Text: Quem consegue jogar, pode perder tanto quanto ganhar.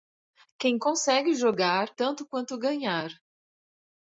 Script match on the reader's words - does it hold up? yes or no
no